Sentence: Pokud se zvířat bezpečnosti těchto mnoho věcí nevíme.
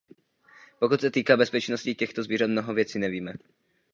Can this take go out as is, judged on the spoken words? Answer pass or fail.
fail